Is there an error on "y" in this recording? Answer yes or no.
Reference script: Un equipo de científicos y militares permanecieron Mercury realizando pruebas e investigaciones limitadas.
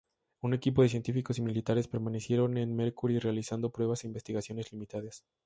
no